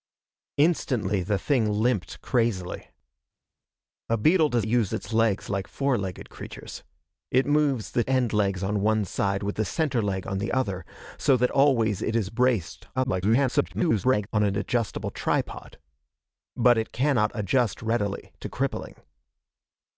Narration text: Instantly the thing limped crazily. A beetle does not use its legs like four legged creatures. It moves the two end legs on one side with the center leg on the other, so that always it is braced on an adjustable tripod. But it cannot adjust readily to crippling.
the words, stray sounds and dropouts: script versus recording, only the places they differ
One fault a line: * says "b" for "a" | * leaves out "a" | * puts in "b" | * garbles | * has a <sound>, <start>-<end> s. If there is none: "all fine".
* leaves out "not"
* leaves out "two"
* garbles